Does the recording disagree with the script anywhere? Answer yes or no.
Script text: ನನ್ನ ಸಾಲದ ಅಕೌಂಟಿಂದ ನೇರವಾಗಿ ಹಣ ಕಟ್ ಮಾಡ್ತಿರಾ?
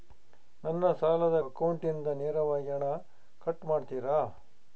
no